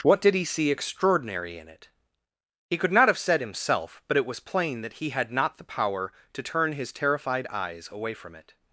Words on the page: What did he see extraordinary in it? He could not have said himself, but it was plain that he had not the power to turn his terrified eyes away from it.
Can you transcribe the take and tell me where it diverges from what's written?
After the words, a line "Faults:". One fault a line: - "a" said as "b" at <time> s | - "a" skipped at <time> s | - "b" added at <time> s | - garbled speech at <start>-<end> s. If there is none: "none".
What did he see extraordinary in it? He could not have said himself, but it was plain that he had not the power to turn his terrified eyes away from it.
Faults:
none